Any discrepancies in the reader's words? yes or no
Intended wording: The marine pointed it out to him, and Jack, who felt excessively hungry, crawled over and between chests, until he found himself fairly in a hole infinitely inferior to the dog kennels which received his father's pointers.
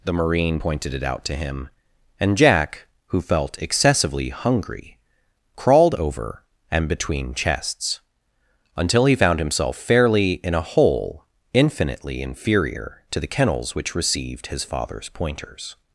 yes